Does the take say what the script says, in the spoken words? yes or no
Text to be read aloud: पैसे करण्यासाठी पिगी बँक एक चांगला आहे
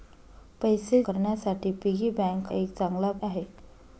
yes